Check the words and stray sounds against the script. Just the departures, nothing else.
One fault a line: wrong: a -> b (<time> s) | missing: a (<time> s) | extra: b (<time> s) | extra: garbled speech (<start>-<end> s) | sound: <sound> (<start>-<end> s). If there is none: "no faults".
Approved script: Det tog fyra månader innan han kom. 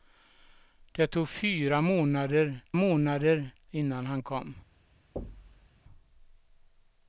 extra: månader (2.7 s)
sound: thud (5.2-5.7 s)